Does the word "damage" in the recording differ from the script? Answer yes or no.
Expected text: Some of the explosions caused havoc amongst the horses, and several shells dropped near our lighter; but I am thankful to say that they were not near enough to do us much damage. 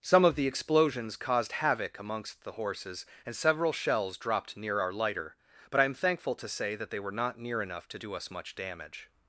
no